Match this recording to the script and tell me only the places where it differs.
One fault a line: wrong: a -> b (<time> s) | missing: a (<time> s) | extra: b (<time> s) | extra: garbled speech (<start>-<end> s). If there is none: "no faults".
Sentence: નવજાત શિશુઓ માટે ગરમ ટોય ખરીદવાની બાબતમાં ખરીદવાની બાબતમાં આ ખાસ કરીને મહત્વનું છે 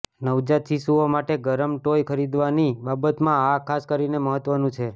missing: ખરીદવાની બાબતમાં (3.4 s)